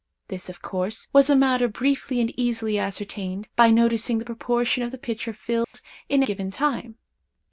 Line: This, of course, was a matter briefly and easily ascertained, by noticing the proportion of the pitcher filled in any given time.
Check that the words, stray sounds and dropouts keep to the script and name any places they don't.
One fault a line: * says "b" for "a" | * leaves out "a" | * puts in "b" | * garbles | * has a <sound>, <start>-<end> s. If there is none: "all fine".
* has a dropout, 5.6-5.7 s
* leaves out "any"